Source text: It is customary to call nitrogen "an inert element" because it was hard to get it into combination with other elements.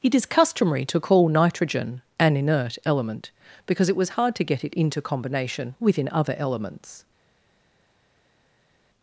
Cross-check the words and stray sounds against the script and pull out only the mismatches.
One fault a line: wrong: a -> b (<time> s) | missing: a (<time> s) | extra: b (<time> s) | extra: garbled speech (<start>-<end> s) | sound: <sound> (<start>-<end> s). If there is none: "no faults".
wrong: with -> within (5.8 s)